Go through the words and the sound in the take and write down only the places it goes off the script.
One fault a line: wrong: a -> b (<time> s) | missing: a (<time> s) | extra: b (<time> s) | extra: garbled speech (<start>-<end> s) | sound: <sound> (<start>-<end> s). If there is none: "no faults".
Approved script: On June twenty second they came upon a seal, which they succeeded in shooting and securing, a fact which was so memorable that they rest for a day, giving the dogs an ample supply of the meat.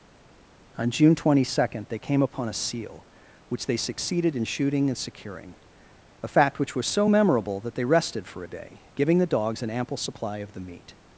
wrong: rest -> rested (7.8 s)